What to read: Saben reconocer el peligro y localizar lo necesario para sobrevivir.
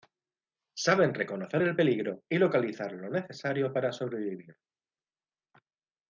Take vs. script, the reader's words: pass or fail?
pass